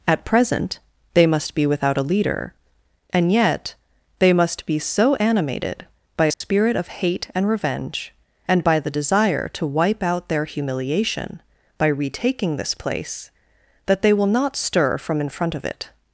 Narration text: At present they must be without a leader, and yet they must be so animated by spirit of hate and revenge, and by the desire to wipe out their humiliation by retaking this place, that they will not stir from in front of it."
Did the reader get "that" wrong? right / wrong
right